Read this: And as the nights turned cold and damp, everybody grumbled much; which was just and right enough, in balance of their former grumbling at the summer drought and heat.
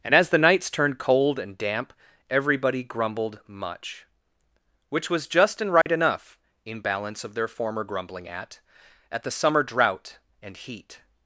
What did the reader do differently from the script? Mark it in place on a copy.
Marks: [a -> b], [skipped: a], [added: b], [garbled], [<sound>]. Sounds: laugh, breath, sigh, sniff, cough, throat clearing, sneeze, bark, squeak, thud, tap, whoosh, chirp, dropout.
And as the nights turned cold and damp, everybody grumbled much; which was just and right [dropout] enough, in balance of their former grumbling at [added: at] the summer drought and heat.